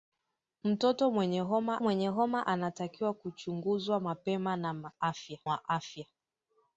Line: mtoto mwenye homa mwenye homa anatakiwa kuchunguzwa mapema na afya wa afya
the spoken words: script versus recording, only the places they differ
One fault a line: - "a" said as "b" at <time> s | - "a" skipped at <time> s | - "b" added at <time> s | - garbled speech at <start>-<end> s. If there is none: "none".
none